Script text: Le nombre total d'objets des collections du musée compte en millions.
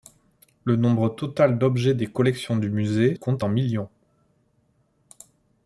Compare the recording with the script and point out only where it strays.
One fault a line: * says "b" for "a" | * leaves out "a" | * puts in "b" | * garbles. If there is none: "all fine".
all fine